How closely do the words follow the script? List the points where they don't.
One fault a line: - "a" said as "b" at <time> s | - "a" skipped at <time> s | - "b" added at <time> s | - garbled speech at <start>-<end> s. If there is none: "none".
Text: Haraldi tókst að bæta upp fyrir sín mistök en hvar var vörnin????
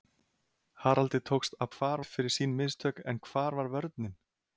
- "bæta" said as "hvar" at 1.8 s